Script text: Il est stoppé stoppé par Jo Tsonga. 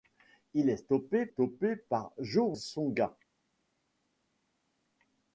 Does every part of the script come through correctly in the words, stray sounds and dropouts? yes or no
yes